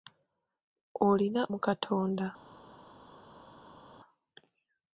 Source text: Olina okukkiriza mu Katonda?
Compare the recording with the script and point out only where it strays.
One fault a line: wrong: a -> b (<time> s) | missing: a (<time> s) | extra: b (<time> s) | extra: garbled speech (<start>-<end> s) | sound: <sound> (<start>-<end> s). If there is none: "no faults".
missing: okukkiriza (1.4 s)